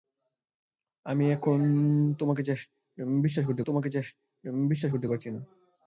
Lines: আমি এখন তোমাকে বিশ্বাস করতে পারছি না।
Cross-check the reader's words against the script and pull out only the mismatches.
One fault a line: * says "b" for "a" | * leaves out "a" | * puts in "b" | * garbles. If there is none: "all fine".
* puts in "তোমাকে বিশ্বাস করতে"